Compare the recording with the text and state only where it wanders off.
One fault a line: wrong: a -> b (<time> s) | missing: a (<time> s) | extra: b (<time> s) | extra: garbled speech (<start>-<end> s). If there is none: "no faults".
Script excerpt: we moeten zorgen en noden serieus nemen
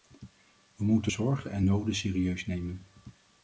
no faults